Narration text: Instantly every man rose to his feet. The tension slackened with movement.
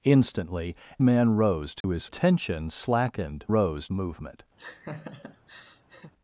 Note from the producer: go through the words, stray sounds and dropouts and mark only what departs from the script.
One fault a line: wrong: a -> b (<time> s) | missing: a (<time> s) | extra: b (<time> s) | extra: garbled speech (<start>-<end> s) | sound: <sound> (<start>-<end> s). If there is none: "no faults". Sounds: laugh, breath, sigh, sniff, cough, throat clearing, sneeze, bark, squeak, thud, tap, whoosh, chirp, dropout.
missing: every (0.8 s)
sound: dropout (1.8-1.8 s)
missing: feet The (2.1 s)
wrong: with -> rose (3.5 s)
sound: laugh (4.6-6.1 s)